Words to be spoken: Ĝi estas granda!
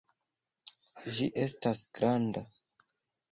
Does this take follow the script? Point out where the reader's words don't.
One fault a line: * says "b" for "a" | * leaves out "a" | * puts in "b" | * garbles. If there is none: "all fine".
all fine